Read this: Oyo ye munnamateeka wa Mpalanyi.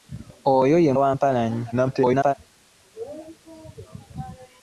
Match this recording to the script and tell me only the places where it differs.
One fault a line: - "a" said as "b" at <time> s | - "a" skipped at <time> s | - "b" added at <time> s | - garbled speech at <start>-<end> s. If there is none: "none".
- "munnamateeka" skipped at 0.9 s
- garbled speech at 1.7-2.3 s